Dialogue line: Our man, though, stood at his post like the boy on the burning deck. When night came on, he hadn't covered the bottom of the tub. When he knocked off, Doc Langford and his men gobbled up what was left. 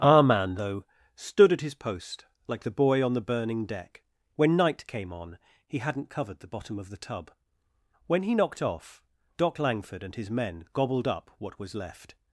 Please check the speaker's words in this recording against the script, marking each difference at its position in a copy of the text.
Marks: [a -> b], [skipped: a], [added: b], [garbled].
Our man, though, stood at his post like the boy on the burning deck. When night came on, he hadn't covered the bottom of the tub. When he knocked off, Doc Langford and his men gobbled up what was left.